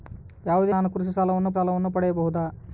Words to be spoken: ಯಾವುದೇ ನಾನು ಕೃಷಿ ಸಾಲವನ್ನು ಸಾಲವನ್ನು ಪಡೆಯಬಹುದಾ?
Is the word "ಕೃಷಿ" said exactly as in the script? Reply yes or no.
yes